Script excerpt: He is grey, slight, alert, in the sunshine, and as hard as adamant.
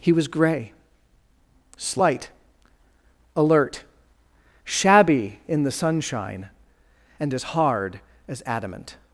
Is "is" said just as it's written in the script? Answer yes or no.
no